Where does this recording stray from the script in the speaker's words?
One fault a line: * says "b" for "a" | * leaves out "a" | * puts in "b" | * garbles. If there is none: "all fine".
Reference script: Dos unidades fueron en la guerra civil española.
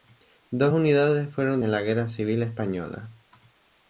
all fine